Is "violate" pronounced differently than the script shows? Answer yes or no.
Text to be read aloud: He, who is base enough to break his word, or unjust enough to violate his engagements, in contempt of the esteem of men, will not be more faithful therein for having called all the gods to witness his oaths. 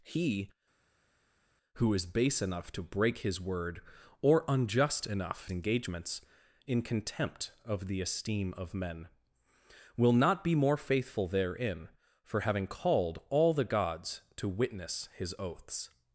yes